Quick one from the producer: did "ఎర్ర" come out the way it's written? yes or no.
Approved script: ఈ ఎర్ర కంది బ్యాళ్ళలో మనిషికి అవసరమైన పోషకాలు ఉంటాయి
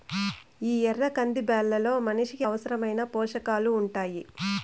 yes